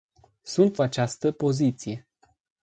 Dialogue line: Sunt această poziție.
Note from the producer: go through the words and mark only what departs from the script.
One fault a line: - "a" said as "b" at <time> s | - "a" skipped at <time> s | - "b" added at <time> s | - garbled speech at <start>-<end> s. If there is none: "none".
none